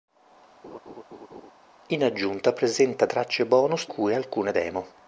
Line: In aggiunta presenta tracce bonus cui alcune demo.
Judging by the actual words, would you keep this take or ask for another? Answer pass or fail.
pass